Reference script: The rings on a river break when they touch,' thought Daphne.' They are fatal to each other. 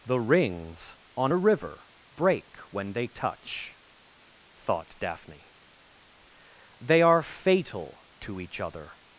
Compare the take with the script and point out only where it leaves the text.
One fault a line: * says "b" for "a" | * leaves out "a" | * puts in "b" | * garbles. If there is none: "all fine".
all fine